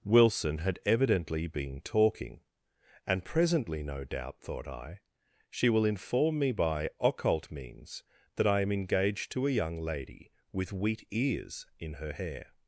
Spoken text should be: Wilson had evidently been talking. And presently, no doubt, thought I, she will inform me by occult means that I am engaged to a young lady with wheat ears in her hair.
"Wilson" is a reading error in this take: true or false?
false